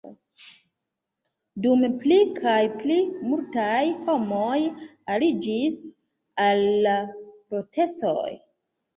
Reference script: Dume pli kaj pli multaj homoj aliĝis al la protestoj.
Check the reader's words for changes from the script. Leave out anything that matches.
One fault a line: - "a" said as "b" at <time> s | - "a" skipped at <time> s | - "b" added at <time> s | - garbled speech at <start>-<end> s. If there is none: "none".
none